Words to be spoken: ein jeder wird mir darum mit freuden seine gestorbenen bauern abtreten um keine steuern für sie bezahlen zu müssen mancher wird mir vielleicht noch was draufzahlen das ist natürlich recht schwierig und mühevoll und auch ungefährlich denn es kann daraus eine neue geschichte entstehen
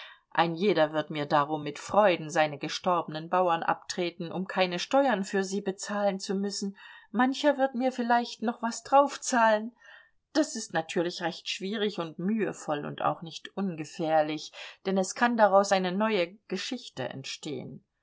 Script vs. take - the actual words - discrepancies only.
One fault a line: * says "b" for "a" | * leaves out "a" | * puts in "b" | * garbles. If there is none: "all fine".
* puts in "nicht"